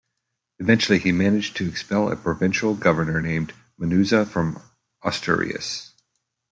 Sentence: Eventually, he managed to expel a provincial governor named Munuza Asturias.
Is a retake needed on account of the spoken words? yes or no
yes